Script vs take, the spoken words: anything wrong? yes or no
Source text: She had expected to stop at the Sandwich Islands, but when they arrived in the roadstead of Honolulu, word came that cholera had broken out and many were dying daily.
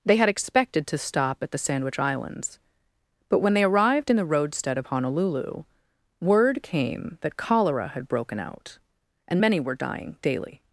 yes